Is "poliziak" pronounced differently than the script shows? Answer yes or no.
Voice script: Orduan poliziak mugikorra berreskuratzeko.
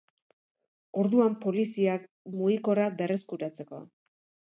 no